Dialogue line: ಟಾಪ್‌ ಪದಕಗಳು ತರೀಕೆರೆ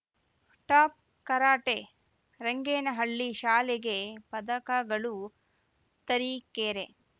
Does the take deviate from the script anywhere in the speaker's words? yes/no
yes